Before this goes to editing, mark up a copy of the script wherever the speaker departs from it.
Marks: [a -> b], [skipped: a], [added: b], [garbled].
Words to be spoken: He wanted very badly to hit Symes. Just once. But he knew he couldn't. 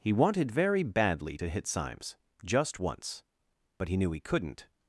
He wanted very badly to hit Symes. Just once. But he knew he couldn't.